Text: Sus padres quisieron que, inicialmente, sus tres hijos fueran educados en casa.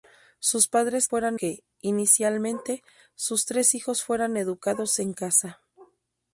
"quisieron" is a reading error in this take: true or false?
true